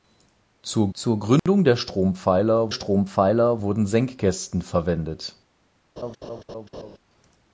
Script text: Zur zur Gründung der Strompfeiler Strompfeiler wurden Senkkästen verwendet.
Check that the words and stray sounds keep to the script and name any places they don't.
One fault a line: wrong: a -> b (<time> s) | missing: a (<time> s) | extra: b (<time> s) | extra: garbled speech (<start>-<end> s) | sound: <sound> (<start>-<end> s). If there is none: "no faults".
sound: dropout (1.4-1.5 s)
sound: laugh (6.0-7.0 s)